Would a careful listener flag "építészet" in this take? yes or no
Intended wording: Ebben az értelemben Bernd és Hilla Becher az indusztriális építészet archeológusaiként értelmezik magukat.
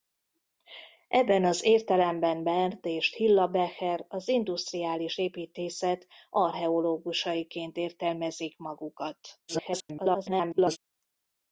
no